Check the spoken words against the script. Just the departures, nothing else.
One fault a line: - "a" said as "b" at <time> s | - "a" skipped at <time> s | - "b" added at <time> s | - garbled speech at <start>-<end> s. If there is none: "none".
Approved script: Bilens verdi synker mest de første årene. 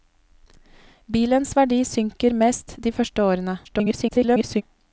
- garbled speech at 3.6-4.6 s